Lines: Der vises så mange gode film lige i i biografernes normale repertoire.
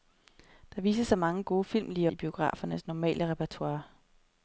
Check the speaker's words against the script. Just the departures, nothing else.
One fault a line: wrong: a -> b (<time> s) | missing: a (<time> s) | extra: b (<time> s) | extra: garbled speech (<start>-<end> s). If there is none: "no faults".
no faults